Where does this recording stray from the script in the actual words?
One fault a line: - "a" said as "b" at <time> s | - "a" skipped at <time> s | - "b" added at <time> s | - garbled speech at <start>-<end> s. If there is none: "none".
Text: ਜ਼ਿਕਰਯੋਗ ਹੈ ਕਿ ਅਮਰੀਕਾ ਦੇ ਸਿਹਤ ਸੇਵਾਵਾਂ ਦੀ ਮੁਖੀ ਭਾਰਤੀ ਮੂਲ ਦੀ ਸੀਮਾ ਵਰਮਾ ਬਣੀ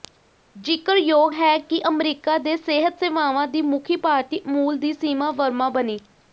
none